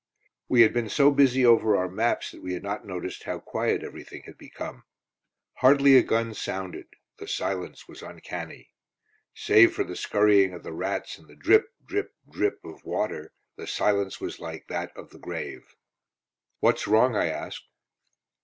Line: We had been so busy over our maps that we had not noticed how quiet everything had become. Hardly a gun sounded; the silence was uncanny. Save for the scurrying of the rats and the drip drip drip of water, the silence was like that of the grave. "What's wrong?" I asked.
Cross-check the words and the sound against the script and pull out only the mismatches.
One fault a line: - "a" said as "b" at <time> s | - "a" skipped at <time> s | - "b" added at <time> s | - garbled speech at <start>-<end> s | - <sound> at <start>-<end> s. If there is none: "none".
none